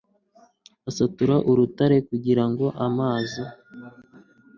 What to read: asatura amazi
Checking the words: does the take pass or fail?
fail